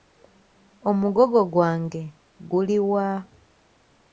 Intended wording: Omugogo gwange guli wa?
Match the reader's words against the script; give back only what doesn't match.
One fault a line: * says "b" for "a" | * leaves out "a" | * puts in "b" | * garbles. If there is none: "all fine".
all fine